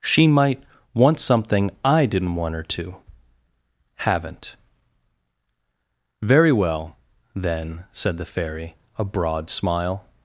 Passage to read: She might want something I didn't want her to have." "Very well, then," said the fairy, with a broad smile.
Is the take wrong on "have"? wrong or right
wrong